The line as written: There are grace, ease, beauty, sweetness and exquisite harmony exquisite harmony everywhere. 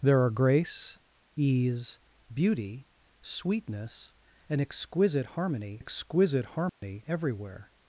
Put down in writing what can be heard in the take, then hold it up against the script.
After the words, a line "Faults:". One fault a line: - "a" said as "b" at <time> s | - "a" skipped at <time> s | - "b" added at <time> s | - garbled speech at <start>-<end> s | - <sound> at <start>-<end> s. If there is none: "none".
There are grace, ease, beauty, sweetness and exquisite harmony exquisite harmony everywhere.
Faults:
- dropout at 6.7-6.8 s